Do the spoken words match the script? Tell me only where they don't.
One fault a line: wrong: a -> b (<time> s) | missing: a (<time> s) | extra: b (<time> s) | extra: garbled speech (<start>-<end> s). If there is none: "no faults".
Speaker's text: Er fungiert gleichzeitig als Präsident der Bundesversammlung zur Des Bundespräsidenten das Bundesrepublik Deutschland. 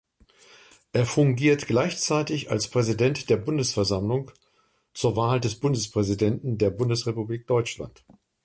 extra: Wahl (5.2 s)
wrong: das -> der (6.6 s)